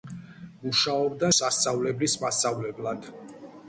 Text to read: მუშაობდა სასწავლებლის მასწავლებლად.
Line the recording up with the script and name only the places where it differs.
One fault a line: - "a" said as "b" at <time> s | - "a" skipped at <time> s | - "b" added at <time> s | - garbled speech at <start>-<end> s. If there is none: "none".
none